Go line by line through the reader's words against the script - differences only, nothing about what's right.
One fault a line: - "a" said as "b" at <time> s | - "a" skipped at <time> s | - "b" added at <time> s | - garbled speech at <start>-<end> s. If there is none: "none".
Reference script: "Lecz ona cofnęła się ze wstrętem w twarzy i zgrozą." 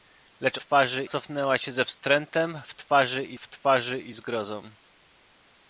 - "ona" said as "twarzy" at 0.6 s
- "w twarzy i" added at 3.4 s